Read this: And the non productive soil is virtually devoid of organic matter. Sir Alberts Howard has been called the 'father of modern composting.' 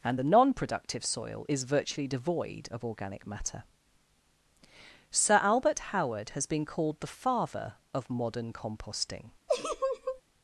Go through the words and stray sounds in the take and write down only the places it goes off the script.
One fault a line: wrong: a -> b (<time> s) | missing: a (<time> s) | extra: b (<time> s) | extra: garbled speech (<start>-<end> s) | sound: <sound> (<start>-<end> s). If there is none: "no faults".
wrong: Alberts -> Albert (5.4 s)
sound: laugh (9.5-10.2 s)